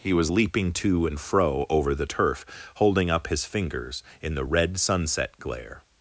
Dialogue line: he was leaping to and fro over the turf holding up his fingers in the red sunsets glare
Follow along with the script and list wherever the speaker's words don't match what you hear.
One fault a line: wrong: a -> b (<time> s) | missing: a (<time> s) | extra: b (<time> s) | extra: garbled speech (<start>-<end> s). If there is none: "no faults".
wrong: sunsets -> sunset (4.8 s)